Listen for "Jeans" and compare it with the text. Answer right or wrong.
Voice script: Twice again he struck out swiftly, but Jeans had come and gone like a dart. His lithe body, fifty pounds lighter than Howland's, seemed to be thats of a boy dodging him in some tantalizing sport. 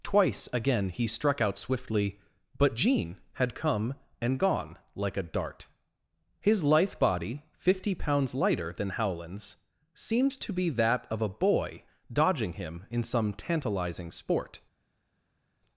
wrong